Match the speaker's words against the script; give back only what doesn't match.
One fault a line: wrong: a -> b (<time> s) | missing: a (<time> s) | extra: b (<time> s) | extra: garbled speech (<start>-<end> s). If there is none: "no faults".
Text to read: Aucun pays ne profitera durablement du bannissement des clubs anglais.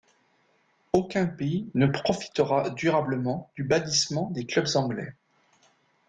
no faults